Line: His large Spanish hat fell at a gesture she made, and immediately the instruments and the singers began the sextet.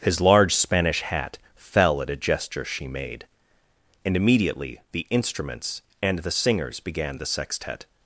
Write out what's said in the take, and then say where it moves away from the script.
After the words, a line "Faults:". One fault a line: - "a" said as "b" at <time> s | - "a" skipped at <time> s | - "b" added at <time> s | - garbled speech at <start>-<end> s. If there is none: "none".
His large Spanish hat fell at a gesture she made, and immediately the instruments and the singers began the sextet.
Faults:
none